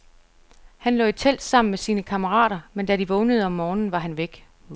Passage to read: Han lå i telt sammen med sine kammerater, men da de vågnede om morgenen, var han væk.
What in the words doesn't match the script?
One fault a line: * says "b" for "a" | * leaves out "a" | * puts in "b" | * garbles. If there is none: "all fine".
all fine